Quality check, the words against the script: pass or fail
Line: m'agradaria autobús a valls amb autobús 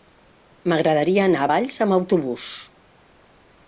fail